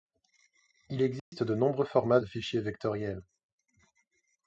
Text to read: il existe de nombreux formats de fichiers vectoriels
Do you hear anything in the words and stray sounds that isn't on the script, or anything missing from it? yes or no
yes